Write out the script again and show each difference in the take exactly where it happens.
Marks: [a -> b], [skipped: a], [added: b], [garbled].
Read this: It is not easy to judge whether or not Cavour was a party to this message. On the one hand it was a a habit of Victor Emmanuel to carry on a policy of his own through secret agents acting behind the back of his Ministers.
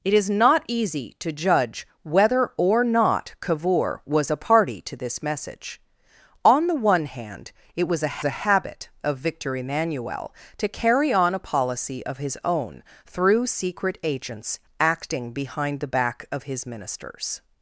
It is not easy to judge whether or not Cavour was a party to this message. On the one hand it was a a habit of Victor Emmanuel to carry on a policy of his own through secret agents acting behind the back of his Ministers.